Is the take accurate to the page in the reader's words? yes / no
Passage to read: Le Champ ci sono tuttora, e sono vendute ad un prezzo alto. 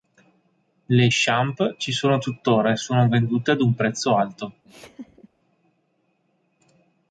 yes